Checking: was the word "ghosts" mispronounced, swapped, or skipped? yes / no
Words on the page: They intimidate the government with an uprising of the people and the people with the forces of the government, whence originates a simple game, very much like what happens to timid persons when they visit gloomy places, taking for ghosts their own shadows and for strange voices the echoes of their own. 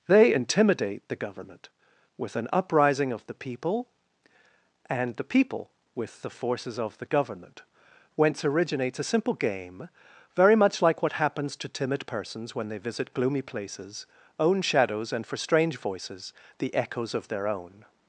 yes